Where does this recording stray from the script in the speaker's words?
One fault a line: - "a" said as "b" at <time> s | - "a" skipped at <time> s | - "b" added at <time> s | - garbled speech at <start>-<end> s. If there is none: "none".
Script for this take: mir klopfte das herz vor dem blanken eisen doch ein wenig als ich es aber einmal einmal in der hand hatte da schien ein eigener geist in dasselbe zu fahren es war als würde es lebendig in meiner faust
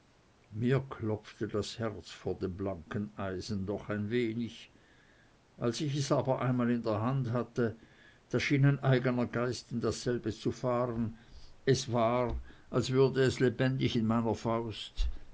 - "einmal" skipped at 6.7 s